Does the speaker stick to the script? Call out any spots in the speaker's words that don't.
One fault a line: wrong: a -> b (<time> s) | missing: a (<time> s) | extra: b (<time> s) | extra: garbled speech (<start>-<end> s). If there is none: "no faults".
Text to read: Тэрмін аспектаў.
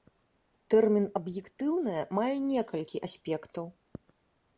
extra: аб'ектыўнае мае некалькі (1.2 s)